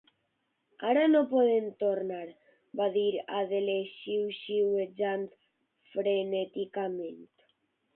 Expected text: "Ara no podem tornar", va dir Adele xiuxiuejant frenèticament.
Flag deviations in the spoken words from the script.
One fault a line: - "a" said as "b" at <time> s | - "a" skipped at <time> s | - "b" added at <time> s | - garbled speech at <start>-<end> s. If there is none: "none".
none